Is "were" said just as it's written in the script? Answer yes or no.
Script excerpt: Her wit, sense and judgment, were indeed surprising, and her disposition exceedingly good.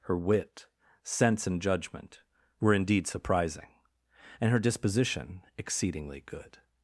yes